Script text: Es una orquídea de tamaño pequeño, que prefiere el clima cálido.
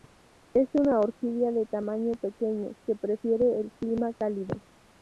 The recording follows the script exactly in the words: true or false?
true